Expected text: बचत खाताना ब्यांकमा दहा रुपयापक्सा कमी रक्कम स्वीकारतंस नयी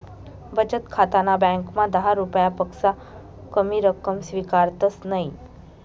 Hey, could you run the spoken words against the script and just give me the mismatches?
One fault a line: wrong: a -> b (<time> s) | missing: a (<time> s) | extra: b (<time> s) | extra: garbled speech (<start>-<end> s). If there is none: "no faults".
no faults